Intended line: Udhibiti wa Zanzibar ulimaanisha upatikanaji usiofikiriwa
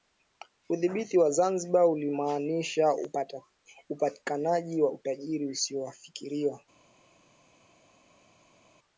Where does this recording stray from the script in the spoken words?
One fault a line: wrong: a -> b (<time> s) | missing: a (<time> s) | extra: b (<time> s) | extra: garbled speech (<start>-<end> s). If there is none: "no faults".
extra: wa utajiri (4.8 s)